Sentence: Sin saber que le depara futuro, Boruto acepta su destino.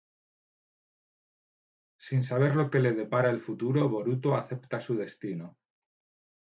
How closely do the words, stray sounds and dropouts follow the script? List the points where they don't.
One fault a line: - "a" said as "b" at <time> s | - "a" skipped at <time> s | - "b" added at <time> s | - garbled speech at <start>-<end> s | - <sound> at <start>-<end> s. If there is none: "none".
- "lo" added at 2.6 s
- "el" added at 3.3 s